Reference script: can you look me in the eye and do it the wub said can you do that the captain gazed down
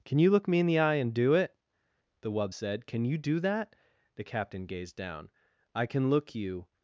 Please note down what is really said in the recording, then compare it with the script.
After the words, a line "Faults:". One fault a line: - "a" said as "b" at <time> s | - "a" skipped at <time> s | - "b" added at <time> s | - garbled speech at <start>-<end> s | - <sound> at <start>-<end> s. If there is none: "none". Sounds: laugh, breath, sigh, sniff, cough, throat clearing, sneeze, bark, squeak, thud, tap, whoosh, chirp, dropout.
can you look me in the eye and do it the wub said can you do that the captain gazed down i can look you
Faults:
- "i can look you" added at 5.7 s